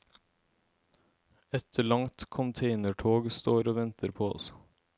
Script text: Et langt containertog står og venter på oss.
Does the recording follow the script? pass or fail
pass